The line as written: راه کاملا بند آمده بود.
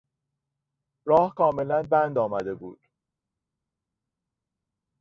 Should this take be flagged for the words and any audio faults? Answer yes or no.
no